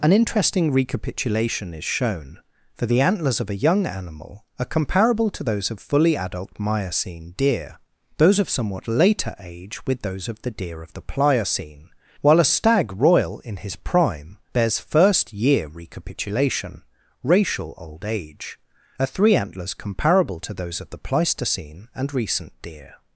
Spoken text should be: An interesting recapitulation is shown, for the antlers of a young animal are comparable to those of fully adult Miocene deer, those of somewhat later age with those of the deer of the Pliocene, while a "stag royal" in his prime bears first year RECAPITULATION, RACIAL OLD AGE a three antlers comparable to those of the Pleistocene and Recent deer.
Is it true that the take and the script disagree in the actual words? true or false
false